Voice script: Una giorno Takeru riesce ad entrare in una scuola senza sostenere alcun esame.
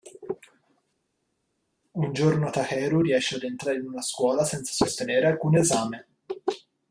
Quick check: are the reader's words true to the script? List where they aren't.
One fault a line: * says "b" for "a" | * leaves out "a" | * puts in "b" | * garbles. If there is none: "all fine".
* says "Un" for "Una"